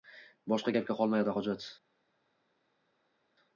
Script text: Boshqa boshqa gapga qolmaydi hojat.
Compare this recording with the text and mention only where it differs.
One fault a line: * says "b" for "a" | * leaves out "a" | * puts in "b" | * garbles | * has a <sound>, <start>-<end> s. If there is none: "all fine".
* leaves out "boshqa"